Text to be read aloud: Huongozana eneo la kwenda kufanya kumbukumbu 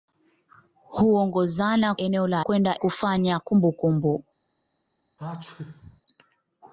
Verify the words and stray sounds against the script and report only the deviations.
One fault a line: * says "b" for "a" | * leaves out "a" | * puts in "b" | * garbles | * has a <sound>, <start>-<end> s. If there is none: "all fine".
* has a sneeze, 5.2-6.0 s